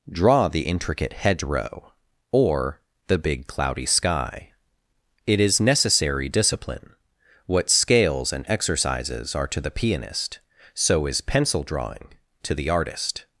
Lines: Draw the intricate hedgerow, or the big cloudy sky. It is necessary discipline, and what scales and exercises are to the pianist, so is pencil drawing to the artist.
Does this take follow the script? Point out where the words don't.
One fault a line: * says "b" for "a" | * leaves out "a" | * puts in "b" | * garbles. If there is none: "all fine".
* leaves out "and"